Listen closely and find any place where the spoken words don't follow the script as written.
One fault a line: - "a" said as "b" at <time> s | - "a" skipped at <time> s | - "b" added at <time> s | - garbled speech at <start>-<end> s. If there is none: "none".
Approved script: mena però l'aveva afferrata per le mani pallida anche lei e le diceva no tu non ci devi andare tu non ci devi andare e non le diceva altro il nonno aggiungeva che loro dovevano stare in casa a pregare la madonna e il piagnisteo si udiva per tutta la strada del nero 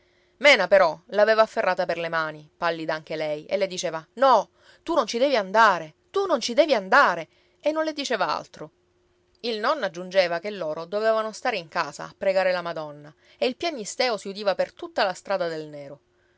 none